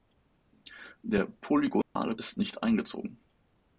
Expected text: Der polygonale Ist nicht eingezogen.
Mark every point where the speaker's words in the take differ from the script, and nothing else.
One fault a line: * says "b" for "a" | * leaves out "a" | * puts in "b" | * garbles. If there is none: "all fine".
all fine